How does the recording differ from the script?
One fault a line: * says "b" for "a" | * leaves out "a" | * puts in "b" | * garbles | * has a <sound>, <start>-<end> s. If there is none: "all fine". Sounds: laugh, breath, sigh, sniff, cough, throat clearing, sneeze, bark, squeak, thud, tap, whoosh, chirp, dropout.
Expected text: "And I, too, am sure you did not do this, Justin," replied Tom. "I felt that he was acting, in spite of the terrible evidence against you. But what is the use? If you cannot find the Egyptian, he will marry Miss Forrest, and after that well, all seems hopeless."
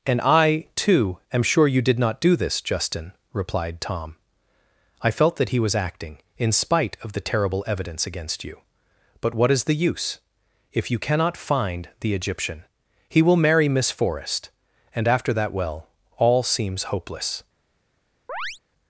* has a chirp, 18.3-18.6 s